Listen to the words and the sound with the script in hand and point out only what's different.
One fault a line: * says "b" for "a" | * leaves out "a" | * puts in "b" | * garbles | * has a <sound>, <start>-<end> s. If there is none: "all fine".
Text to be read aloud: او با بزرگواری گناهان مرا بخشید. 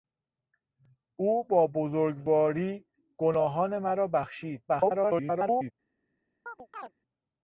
* garbles
* has a chirp, 6.5-6.9 s